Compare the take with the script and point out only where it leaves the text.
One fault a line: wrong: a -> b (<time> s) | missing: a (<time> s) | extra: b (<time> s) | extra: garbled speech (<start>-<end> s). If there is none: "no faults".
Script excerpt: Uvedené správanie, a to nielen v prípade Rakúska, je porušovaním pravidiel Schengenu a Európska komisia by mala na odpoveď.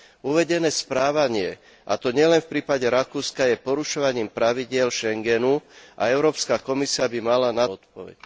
no faults